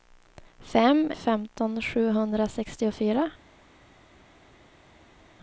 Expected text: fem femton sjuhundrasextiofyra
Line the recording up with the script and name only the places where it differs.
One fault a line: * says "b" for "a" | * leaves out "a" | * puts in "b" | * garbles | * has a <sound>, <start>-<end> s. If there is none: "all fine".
all fine